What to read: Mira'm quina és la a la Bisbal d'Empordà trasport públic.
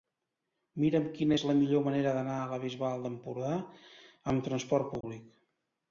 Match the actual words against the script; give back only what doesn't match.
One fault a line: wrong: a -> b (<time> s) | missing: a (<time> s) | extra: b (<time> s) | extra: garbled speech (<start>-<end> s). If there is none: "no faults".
extra: millor manera d'anar (1.6 s)
extra: amb (4.3 s)